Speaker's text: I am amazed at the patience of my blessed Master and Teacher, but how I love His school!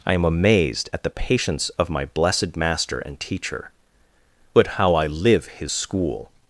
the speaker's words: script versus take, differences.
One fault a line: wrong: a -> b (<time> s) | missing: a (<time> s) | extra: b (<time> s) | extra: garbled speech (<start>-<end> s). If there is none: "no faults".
wrong: love -> live (5.1 s)